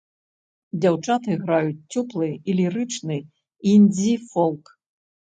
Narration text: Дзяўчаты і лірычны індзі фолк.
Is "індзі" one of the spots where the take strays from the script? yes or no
no